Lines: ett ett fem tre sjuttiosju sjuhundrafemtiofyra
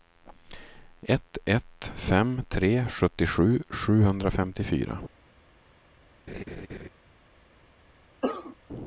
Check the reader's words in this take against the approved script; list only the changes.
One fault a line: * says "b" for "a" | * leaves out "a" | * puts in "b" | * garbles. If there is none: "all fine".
all fine